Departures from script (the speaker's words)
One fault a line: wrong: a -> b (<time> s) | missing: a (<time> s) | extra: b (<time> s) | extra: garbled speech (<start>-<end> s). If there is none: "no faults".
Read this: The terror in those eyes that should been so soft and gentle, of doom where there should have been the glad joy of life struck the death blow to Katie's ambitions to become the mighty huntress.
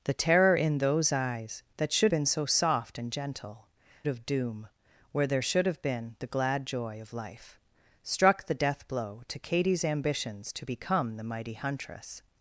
no faults